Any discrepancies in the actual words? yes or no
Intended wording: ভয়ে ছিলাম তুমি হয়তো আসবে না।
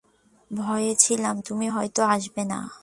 no